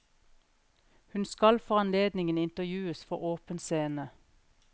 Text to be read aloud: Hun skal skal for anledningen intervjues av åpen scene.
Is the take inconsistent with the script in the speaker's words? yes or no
yes